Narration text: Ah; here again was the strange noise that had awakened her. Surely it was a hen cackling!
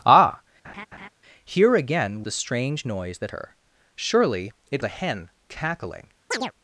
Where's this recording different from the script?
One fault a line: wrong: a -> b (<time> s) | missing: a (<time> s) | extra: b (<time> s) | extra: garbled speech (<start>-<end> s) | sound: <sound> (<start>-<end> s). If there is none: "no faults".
sound: laugh (0.6-1.1 s)
missing: was (2.2 s)
missing: had awakened (3.3 s)
missing: was (4.8 s)
sound: chirp (6.3-6.5 s)